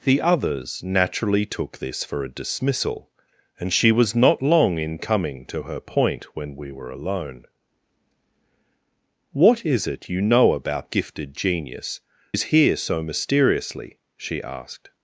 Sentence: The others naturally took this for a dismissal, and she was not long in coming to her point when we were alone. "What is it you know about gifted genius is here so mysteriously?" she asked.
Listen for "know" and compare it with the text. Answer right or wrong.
right